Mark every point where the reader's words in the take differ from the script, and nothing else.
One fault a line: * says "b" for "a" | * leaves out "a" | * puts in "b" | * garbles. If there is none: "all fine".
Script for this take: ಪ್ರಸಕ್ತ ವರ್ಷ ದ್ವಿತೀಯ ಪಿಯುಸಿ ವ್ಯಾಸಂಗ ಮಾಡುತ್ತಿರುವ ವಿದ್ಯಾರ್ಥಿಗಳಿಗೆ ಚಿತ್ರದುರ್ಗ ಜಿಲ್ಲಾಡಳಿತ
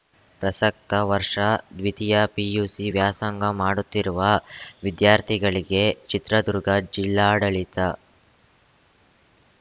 all fine